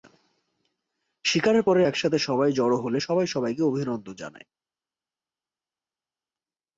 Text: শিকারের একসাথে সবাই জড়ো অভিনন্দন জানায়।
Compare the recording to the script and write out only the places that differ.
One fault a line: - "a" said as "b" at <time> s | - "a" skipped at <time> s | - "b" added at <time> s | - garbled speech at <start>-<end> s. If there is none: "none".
- "পরে" added at 1.6 s
- "হলে সবাই সবাইকে" added at 2.8 s